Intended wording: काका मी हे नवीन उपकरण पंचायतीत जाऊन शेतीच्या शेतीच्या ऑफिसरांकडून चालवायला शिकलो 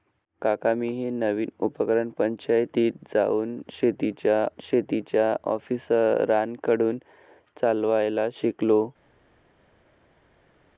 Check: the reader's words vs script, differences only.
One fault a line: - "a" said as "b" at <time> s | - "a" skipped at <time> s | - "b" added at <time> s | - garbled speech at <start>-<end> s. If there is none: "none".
none